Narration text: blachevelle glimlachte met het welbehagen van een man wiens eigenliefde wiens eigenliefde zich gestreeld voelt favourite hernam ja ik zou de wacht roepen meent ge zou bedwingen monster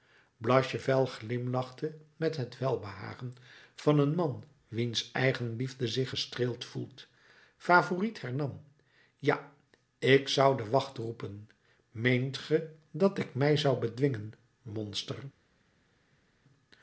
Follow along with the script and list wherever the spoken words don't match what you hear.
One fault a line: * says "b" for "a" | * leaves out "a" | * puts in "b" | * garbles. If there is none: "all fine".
* leaves out "wiens eigenliefde"
* puts in "dat ik mij"